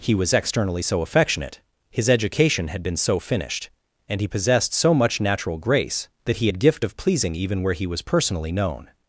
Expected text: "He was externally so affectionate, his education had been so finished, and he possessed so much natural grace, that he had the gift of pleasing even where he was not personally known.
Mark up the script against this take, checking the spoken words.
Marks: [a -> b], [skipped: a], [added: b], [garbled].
"He was externally so affectionate, his education had been so finished, and he possessed so much natural grace, that he had [skipped: the] gift of pleasing even where he was [skipped: not] personally known.